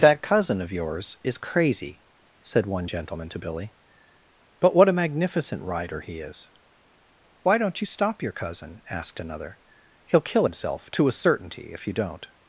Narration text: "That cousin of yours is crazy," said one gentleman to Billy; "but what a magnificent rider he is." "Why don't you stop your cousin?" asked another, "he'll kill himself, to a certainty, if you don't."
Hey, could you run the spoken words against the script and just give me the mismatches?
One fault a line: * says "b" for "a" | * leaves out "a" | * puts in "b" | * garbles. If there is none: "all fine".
all fine